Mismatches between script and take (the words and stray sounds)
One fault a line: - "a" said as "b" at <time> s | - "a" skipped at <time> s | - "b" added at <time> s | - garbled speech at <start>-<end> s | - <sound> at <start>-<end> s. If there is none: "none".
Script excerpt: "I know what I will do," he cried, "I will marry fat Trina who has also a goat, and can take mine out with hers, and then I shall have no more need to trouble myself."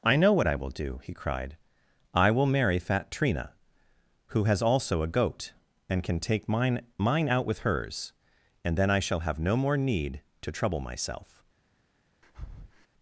- "mine" added at 7.0 s
- breath at 12.2-12.9 s